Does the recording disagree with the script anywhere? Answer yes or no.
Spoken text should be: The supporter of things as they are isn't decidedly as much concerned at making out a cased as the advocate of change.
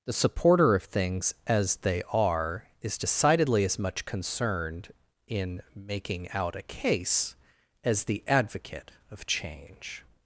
yes